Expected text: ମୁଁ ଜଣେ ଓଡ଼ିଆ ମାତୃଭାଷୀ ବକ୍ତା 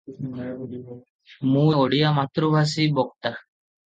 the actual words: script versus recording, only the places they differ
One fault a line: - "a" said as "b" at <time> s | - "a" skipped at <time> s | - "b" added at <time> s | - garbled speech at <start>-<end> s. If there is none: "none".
- "ଜଣେ" skipped at 1.7 s